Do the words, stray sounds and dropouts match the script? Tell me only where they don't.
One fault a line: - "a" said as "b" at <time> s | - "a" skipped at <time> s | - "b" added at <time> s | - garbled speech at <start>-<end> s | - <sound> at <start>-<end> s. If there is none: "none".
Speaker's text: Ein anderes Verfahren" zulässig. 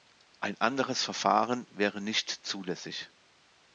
- "wäre nicht" added at 1.7 s